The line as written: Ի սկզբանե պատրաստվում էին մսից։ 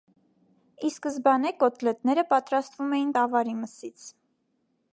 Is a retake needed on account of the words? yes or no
yes